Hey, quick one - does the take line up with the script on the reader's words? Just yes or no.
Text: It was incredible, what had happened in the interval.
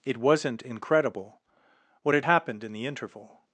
no